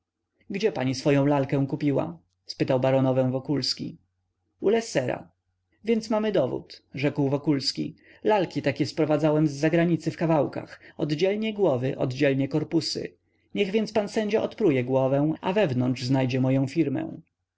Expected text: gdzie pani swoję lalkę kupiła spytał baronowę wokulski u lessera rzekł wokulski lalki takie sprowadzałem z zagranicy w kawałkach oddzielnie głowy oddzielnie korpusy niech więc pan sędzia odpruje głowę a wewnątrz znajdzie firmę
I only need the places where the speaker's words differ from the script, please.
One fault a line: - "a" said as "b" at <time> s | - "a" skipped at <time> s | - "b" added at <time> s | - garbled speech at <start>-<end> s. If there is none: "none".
- "więc mamy dowód" added at 5.8 s
- "moję" added at 16.4 s